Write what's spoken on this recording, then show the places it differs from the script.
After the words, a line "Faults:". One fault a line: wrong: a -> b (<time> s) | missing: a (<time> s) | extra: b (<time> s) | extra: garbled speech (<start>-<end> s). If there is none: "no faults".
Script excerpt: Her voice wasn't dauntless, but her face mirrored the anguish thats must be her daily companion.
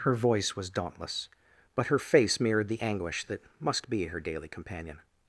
Her voice was dauntless, but her face mirrored the anguish that must be her daily companion.
Faults:
wrong: wasn't -> was (0.6 s)
wrong: thats -> that (3.3 s)